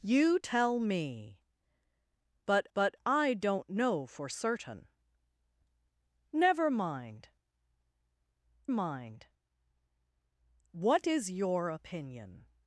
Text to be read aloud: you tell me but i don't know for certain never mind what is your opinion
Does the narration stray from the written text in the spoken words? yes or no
yes